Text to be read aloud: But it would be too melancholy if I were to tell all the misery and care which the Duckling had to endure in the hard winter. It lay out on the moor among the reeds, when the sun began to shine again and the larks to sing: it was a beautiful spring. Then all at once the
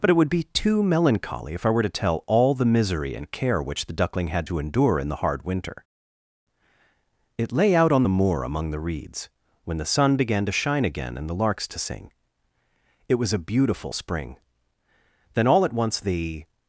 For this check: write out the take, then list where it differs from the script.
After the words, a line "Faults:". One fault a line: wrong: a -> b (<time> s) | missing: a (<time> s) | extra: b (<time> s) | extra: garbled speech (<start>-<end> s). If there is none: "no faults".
But it would be too melancholy if I were to tell all the misery and care which the Duckling had to endure in the hard winter. It lay out on the moor among the reeds, when the sun began to shine again and the larks to sing: it was a beautiful spring. Then all at once the
Faults:
no faults